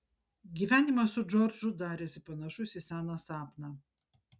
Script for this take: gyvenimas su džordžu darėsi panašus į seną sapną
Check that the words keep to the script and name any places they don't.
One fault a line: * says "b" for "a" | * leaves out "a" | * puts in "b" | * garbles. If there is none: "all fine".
all fine